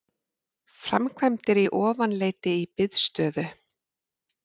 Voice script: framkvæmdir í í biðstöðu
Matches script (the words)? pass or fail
fail